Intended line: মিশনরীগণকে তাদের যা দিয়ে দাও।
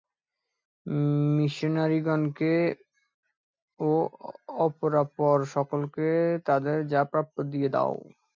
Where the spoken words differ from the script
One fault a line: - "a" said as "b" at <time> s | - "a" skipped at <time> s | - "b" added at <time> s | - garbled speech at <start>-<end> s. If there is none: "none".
- "ও অপরাপর সকলকে" added at 3.8 s
- "প্রাপ্য" added at 7.1 s